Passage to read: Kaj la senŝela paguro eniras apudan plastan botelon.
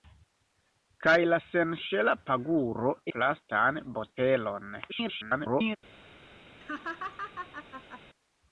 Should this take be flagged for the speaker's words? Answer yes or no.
yes